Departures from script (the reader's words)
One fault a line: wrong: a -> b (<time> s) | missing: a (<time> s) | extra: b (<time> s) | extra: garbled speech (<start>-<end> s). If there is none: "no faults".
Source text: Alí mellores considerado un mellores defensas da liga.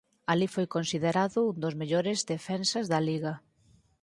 wrong: mellores -> foi (0.6 s)
extra: dos (1.6 s)